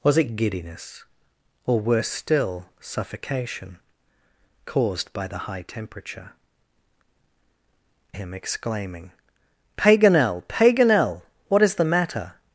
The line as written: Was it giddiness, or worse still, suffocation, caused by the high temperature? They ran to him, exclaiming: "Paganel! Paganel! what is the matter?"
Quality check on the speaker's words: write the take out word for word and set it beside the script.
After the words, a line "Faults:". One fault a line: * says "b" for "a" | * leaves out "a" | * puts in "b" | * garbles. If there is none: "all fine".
Was it giddiness, or worse still, suffocation, caused by the high temperature? Him, exclaiming: "Paganel! Paganel! what is the matter?"
Faults:
* leaves out "They ran to"